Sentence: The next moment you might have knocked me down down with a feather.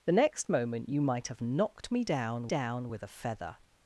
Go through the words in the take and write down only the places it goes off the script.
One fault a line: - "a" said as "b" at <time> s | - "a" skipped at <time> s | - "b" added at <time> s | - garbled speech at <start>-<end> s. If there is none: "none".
none